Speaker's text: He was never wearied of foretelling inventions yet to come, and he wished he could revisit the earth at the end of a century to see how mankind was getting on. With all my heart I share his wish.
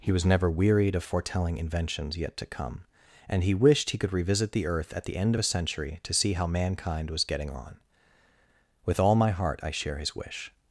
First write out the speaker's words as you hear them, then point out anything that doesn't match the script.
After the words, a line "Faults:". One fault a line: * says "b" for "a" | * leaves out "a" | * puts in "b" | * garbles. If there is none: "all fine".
He was never wearied of foretelling inventions yet to come, and he wished he could revisit the earth at the end of a century to see how mankind was getting on. With all my heart I share his wish.
Faults:
all fine